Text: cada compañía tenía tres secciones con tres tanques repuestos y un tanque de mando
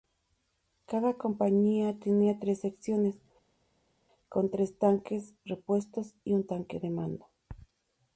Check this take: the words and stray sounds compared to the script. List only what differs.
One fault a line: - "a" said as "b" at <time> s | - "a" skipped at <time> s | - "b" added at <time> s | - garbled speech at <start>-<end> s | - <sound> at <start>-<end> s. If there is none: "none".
none